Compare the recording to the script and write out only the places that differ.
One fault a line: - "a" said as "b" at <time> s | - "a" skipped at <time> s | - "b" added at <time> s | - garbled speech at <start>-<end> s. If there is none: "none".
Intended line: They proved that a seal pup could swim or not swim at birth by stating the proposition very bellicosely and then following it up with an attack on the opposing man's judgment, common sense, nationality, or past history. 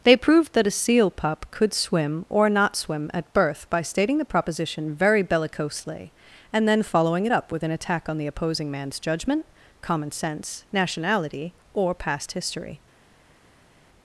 none